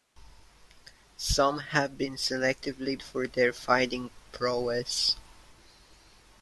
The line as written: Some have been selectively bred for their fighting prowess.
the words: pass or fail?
fail